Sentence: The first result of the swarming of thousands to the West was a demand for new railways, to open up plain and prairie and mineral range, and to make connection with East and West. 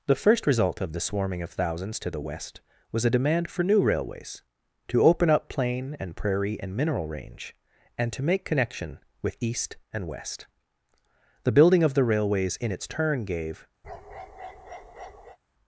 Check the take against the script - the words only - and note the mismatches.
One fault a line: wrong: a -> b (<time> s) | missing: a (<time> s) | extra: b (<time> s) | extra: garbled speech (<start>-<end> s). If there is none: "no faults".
extra: The building of the railways in its turn gave (11.4 s)